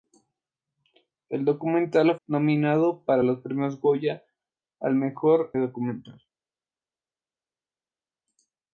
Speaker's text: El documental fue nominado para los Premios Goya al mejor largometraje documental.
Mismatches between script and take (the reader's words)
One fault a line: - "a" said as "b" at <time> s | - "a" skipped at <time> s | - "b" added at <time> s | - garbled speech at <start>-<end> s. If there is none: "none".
- "fue" skipped at 2.1 s
- "largometraje" skipped at 5.5 s